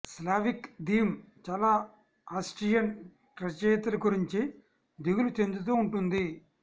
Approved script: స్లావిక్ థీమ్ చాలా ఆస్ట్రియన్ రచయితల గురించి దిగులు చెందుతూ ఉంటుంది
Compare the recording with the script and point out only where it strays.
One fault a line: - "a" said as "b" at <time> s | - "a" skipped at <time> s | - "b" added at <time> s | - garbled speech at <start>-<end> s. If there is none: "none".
none